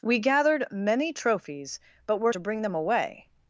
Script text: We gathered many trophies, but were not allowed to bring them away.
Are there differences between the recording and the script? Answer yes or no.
yes